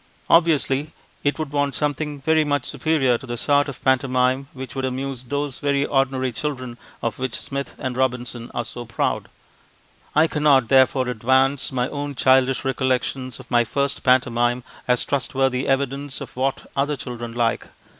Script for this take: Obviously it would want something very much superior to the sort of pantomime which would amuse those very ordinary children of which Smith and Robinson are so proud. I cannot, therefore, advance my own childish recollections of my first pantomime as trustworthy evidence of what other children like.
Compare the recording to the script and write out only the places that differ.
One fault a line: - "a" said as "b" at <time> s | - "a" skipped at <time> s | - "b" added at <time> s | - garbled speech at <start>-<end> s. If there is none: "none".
none